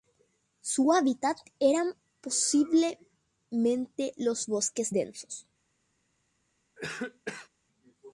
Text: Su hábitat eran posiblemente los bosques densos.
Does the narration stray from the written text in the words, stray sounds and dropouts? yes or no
yes